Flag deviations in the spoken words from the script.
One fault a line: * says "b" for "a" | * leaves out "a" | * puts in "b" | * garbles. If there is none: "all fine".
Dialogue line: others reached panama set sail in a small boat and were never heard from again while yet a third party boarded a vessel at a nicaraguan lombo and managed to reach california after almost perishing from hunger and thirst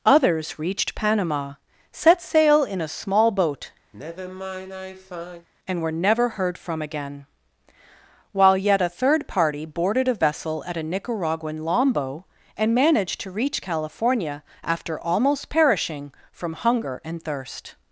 all fine